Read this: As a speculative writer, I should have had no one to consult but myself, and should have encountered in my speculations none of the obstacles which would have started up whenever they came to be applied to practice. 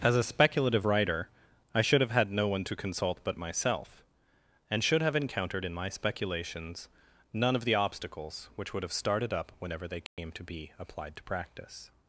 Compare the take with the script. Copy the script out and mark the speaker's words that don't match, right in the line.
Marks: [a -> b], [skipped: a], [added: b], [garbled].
As a speculative writer, I should have had no one to consult but myself, and should have encountered in my speculations none of the obstacles which would have started up whenever they came to be applied to practice.